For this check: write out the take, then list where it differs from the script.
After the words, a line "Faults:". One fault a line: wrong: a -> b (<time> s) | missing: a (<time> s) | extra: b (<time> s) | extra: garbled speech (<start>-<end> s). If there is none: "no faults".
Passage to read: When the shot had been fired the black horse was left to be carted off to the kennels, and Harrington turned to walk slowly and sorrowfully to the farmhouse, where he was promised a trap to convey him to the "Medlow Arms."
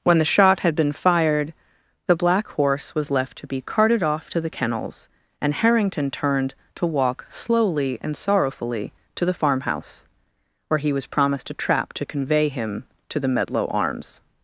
When the shot had been fired the black horse was left to be carted off to the kennels, and Harrington turned to walk slowly and sorrowfully to the farmhouse, where he was promised a trap to convey him to the "Medlow Arms."
Faults:
no faults